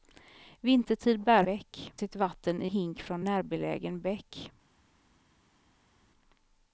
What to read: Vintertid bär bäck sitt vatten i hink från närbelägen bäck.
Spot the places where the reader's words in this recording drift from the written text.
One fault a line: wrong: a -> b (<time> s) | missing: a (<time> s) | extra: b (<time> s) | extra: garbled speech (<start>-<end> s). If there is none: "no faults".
no faults